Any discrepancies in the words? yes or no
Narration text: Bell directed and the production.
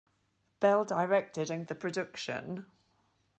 no